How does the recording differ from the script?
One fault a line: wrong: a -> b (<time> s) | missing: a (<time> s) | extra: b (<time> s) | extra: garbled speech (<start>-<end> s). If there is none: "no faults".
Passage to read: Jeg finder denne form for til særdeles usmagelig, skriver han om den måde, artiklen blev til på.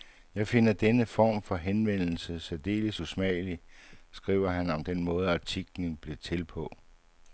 wrong: til -> henvendelse (1.6 s)